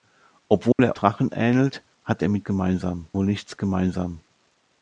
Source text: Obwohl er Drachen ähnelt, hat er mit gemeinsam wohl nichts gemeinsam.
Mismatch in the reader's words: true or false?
false